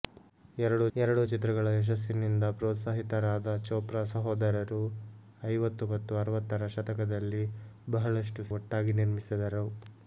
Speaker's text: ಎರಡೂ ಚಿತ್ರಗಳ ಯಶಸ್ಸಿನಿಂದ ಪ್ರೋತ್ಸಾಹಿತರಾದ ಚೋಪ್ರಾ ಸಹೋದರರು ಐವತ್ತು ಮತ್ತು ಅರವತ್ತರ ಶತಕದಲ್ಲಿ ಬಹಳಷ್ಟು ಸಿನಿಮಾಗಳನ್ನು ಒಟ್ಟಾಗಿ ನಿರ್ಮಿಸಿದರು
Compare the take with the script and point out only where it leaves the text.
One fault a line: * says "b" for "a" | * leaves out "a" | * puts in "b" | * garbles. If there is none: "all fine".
* puts in "ಎರಡೂ"
* leaves out "ಸಿನಿಮಾಗಳನ್ನು"